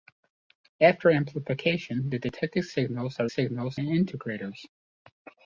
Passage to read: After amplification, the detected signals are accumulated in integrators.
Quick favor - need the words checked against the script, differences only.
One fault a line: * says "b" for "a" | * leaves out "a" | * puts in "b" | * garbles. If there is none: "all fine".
* says "signals" for "accumulated"